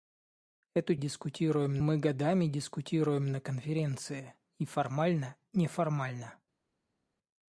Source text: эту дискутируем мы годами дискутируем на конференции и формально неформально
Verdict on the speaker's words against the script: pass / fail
pass